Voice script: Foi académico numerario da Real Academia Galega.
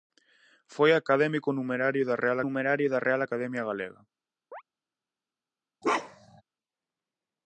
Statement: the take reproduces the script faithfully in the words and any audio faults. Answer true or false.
false